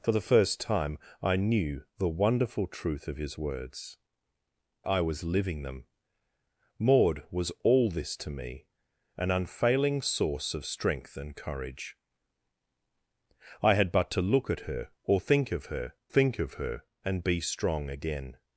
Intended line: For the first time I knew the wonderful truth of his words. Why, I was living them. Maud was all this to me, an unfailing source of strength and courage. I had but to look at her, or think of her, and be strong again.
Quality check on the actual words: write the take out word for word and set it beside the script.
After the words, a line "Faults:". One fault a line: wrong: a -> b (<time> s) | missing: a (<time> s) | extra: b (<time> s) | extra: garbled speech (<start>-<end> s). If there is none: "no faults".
For the first time I knew the wonderful truth of his words. I was living them. Maud was all this to me, an unfailing source of strength and courage. I had but to look at her, or think of her think of her, and be strong again.
Faults:
missing: Why (4.0 s)
extra: think of her (16.1 s)